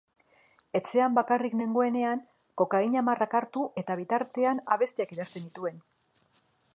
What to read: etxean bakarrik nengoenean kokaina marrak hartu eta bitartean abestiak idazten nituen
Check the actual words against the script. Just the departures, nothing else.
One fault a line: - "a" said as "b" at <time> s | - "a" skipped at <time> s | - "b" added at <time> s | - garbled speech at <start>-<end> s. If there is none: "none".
none